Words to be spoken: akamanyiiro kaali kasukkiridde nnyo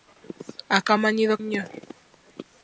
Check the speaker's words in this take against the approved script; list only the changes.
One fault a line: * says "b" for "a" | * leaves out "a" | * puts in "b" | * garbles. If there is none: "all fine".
* leaves out "kaali kasukkiridde"